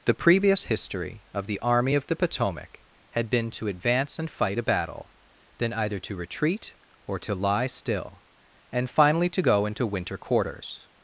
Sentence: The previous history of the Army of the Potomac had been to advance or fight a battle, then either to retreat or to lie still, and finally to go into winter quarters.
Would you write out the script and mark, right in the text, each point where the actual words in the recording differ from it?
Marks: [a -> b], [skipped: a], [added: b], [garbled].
The previous history of the Army of the Potomac had been to advance [or -> and] fight a battle, then either to retreat or to lie still, and finally to go into winter quarters.